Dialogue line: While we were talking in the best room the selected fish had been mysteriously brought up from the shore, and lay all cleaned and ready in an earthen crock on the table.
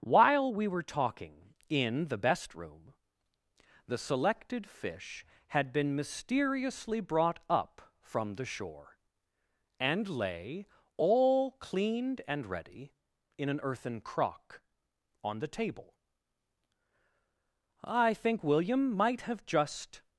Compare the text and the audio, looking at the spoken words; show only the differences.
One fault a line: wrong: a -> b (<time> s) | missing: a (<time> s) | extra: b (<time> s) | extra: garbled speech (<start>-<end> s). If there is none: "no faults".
extra: I think William might have just (17.8 s)